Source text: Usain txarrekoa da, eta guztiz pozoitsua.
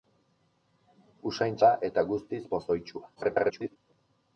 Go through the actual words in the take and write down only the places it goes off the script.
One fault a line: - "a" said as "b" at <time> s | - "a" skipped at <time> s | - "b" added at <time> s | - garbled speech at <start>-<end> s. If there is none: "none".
- "txarrekoa" skipped at 1.6 s
- garbled speech at 3.2-3.8 s